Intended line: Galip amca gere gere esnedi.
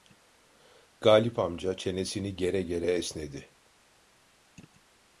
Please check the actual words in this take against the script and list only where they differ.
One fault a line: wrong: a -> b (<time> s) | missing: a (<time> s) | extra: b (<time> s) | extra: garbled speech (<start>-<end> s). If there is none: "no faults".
extra: çenesini (1.8 s)